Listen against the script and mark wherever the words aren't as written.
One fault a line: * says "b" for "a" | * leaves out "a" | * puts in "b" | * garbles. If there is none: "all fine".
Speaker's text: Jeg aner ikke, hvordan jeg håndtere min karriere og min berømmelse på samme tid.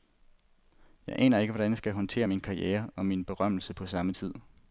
* puts in "skal"